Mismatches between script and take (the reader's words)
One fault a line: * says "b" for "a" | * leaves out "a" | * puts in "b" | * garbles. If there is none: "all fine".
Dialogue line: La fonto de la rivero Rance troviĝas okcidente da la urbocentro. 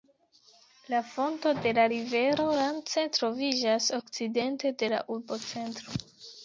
* says "de" for "da"